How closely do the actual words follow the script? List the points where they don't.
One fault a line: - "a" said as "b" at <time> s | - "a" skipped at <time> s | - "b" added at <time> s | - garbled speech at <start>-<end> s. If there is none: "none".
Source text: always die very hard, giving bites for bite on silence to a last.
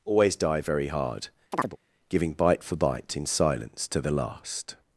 - "bites" said as "bite" at 2.3 s
- "on" said as "in" at 3.2 s
- "a" said as "the" at 4.0 s